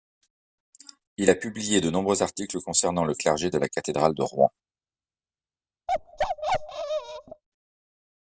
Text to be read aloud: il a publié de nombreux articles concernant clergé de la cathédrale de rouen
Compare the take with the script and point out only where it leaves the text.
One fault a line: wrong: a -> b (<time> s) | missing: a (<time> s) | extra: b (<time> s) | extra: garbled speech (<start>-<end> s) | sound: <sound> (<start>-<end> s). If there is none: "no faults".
extra: le (3.0 s)
sound: bark (5.9-7.4 s)